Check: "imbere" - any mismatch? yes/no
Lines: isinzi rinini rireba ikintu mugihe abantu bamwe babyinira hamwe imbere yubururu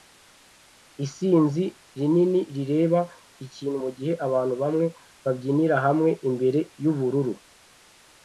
no